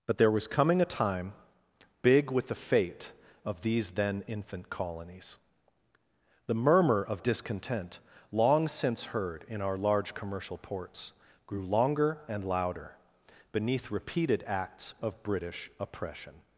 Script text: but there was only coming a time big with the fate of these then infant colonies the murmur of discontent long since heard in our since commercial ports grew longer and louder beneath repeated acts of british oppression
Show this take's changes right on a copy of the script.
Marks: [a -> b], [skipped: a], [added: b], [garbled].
but there was [skipped: only] coming a time big with the fate of these then infant colonies the murmur of discontent long since heard in our [since -> large] commercial ports grew longer and louder beneath repeated acts of british oppression